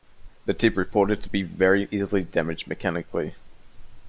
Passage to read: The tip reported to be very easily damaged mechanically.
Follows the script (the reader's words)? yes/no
yes